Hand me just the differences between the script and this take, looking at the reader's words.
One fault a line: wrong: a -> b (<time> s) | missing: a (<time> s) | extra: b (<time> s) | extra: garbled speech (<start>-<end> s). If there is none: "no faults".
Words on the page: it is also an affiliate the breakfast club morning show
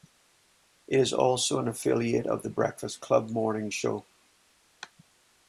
extra: of (2.2 s)